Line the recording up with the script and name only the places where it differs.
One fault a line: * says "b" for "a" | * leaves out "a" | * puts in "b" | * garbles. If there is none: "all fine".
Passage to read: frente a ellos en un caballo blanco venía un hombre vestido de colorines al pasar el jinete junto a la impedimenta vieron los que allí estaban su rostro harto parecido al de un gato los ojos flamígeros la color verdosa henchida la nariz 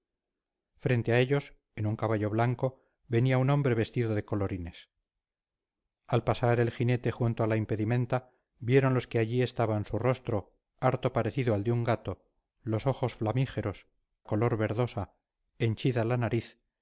* leaves out "la"